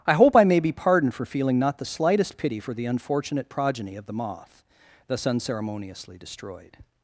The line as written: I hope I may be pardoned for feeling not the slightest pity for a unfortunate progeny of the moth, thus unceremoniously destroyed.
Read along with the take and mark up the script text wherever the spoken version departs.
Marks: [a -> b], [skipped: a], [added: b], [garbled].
I hope I may be pardoned for feeling not the slightest pity for [a -> the] unfortunate progeny of the moth, thus unceremoniously destroyed.